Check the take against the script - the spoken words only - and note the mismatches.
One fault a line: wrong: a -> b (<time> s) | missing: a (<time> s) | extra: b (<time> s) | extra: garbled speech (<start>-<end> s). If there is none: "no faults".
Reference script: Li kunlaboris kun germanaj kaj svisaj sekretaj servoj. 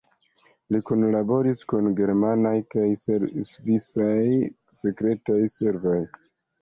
no faults